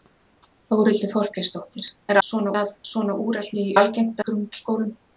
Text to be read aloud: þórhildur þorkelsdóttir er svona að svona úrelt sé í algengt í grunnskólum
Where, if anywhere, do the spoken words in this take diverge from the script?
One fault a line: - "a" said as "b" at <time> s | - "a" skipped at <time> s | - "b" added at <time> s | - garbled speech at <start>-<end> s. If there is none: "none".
none